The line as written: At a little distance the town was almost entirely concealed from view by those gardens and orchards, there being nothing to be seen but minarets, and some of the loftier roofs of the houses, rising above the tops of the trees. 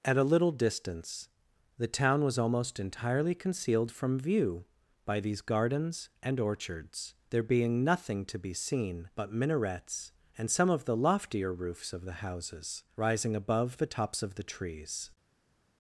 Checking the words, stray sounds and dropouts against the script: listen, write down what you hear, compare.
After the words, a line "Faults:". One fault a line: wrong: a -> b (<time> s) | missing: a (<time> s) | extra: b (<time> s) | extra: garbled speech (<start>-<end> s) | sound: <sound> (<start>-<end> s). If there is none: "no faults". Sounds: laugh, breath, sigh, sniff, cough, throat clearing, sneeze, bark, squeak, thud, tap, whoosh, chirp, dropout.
At a little distance the town was almost entirely concealed from view by these gardens and orchards, there being nothing to be seen but minarets, and some of the loftier roofs of the houses, rising above the tops of the trees.
Faults:
wrong: those -> these (5.2 s)